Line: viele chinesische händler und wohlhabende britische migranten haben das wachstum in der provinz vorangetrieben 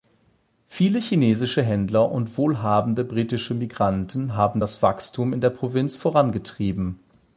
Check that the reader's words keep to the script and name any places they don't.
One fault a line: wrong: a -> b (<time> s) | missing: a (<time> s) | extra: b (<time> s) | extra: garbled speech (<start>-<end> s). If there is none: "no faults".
no faults